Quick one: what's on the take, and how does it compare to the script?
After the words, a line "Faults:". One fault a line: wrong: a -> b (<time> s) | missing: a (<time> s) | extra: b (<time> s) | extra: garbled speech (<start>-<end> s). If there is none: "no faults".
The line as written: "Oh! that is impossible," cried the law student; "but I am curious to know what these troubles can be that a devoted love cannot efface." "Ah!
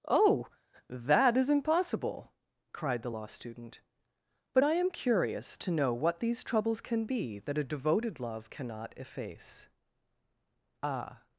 "Oh! that is impossible," cried the law student; "but I am curious to know what these troubles can be that a devoted love cannot efface." "Ah!
Faults:
no faults